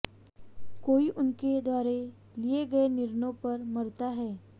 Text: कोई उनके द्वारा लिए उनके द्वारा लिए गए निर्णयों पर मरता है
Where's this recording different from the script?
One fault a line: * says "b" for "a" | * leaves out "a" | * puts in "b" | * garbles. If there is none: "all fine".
* leaves out "उनके द्वारा लिए"